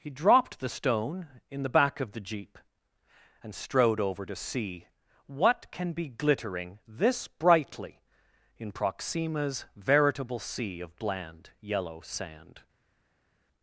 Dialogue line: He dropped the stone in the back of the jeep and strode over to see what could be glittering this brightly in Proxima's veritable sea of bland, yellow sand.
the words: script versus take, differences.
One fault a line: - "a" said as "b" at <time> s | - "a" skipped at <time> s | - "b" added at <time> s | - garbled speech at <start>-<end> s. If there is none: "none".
- "could" said as "can" at 5.7 s